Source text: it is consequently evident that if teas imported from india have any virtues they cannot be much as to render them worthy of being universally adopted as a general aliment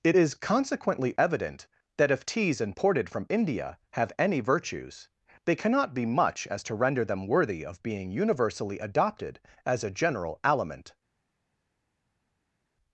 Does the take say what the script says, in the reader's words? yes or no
yes